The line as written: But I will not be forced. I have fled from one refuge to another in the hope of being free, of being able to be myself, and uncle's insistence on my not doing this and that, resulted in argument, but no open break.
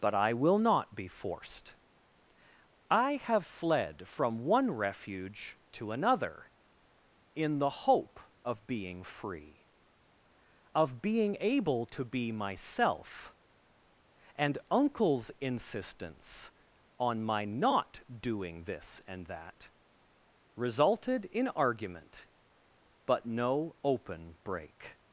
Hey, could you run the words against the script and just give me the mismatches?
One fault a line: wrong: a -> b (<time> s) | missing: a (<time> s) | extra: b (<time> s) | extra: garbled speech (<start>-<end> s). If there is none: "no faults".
no faults